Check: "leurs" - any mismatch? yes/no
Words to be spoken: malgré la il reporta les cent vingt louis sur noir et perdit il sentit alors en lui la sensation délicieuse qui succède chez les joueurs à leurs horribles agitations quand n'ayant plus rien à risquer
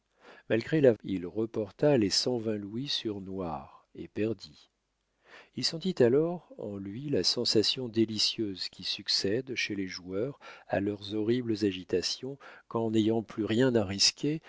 no